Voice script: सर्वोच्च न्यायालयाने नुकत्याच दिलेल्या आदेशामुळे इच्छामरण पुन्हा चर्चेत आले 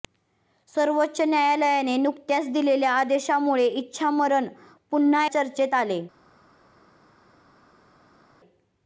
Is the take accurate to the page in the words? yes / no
yes